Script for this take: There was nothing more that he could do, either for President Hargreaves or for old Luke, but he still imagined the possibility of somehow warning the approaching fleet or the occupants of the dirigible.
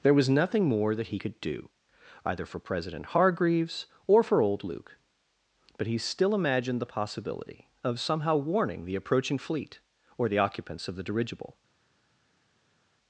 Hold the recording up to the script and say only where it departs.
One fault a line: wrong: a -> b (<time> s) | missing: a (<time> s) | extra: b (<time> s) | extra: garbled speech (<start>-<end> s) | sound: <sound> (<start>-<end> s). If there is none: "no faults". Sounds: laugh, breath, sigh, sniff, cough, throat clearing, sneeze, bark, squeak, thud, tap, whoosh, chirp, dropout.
no faults